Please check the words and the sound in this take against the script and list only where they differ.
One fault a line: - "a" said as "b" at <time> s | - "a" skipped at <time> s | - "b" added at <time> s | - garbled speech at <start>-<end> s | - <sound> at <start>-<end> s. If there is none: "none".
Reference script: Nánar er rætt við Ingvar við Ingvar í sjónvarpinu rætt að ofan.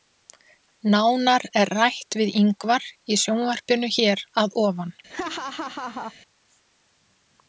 - "við Ingvar" skipped at 2.9 s
- "rætt" said as "hér" at 4.0 s
- laugh at 5.1-6.1 s